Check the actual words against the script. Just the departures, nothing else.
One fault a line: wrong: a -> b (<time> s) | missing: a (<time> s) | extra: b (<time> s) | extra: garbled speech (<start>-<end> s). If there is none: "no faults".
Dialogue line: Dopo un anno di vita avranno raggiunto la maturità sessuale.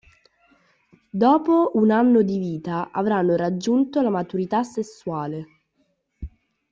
no faults